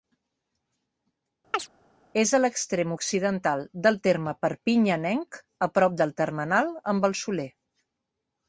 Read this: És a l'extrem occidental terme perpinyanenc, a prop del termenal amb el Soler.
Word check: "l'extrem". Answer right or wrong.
right